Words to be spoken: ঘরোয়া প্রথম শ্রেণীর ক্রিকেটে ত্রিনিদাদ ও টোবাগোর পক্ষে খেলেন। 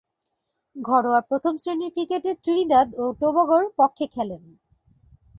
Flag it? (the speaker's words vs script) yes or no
no